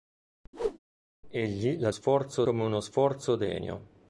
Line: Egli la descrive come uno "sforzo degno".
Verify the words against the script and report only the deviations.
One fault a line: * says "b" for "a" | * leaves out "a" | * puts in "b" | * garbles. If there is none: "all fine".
* says "sforzo" for "descrive"